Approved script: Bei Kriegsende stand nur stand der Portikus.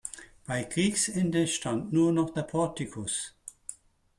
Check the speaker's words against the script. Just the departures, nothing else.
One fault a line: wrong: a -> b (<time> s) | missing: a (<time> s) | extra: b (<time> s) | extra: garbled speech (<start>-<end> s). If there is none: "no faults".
wrong: stand -> noch (2.1 s)